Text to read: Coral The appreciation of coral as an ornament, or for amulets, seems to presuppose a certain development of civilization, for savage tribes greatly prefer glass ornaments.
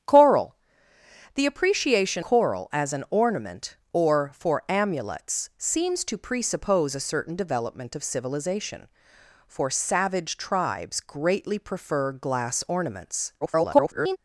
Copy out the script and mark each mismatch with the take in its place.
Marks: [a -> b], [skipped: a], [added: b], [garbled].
Coral The appreciation [skipped: of] coral as an ornament, or for amulets, seems to presuppose a certain development of civilization, for savage tribes greatly prefer glass ornaments. [garbled]